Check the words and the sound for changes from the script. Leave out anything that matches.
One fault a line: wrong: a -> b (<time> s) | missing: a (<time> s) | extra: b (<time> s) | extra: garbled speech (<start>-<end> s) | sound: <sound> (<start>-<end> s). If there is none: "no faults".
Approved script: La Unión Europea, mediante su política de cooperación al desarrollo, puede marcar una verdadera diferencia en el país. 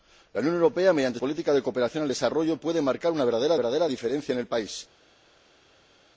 missing: su (1.2 s)
extra: verdadera (3.6 s)